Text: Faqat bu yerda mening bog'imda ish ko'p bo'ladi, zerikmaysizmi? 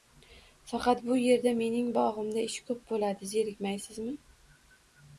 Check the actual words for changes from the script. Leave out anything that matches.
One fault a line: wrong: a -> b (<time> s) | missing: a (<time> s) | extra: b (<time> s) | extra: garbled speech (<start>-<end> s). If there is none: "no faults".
no faults